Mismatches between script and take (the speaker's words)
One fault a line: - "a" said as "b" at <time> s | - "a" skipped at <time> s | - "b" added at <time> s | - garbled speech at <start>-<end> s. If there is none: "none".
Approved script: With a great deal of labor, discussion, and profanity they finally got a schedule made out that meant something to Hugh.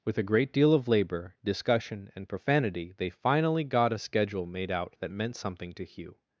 none